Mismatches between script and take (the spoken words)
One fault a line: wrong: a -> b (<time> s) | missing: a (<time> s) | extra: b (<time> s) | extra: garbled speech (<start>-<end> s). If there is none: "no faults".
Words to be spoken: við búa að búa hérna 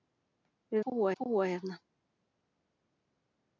no faults